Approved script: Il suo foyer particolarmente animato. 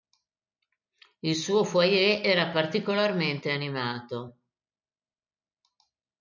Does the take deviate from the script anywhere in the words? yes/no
yes